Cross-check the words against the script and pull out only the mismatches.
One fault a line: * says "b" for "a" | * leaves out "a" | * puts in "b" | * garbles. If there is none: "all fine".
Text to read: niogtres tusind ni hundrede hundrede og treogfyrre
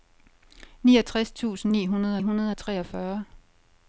all fine